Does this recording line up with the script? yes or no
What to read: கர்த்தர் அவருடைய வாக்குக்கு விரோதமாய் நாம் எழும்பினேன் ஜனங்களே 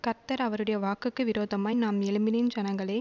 yes